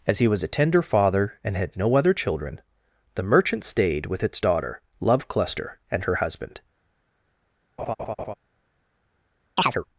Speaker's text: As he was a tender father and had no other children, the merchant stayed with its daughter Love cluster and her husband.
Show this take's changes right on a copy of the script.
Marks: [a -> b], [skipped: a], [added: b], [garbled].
As he was a tender father and had no other children, the merchant stayed with its daughter Love cluster and her husband.